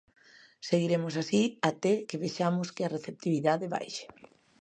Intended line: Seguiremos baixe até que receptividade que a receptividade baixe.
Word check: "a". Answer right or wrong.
right